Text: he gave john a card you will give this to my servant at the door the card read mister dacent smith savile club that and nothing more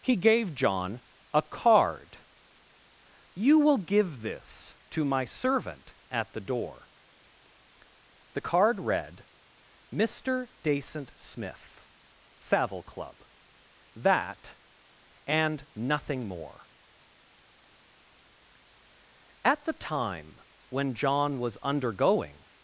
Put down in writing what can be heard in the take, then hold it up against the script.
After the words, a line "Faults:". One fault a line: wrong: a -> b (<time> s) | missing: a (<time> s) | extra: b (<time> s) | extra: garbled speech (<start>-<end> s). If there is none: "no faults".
he gave john a card you will give this to my servant at the door the card read mister dacent smith savile club that and nothing more at the time when john was undergoing
Faults:
extra: at the time when john was undergoing (19.4 s)